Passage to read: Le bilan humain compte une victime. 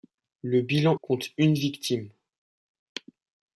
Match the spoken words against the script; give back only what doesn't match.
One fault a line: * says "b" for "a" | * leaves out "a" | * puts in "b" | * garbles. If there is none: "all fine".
* leaves out "humain"